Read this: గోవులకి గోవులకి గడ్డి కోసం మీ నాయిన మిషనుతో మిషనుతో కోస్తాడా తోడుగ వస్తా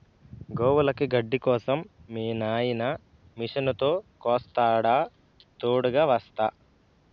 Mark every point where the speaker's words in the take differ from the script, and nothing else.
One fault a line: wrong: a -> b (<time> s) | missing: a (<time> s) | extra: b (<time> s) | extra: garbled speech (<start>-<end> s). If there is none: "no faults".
missing: గోవులకి (1.1 s)
missing: మిషనుతో (3.9 s)